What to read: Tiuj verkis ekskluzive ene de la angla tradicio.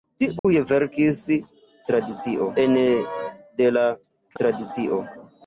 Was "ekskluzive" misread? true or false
true